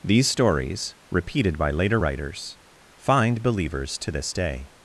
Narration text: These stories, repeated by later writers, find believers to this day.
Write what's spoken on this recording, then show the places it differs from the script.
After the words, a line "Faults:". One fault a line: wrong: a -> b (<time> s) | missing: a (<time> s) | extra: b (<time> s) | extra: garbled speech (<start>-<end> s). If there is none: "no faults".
These stories, repeated by later writers, find believers to this day.
Faults:
no faults